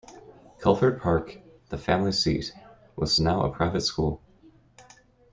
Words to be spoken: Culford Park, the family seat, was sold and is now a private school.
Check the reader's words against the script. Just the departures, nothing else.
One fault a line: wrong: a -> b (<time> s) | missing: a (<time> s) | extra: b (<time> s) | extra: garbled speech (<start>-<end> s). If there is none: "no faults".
missing: sold and is (3.1 s)